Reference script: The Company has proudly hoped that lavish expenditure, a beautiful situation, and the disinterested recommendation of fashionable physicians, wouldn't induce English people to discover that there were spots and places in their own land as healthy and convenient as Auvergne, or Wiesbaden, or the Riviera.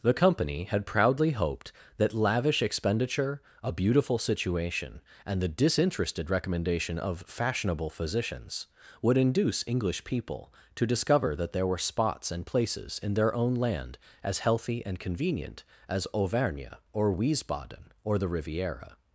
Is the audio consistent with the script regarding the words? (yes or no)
no